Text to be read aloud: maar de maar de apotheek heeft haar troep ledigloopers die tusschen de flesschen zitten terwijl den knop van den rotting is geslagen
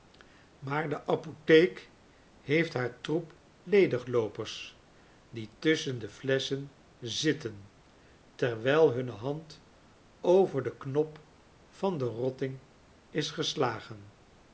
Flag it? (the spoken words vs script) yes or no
yes